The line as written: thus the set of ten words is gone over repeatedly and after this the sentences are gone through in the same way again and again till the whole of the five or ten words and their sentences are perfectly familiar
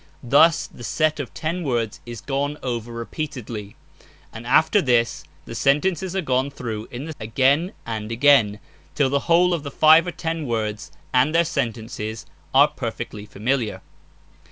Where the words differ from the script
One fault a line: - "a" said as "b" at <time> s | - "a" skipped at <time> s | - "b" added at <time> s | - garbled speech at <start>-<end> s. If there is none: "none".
- "same way" skipped at 7.1 s